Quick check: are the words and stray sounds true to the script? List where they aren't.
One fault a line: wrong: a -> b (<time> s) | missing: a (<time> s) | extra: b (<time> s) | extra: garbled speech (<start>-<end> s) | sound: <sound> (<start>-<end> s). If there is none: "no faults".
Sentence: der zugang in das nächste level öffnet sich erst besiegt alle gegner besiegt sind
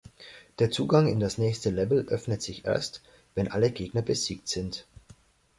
wrong: besiegt -> wenn (3.3 s)